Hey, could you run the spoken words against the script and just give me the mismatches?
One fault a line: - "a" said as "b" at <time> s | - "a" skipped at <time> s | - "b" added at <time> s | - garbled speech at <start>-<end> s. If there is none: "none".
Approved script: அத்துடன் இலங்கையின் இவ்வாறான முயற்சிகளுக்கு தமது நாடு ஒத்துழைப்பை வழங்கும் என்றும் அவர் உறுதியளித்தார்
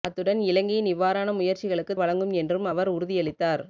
- "தமது நாடு ஒத்துழைப்பை" skipped at 1.9 s